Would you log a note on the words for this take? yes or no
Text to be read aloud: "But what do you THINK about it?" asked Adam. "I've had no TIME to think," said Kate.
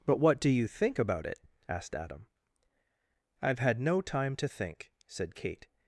no